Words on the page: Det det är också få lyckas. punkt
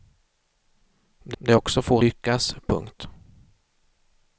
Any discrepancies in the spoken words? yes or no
no